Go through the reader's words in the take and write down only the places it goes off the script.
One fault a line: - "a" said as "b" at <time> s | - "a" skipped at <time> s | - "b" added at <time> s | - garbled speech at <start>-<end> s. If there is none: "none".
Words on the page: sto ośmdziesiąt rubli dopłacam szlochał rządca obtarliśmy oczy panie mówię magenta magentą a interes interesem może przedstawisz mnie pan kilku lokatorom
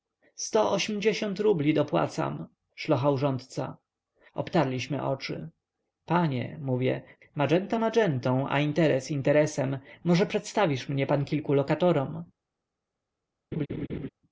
none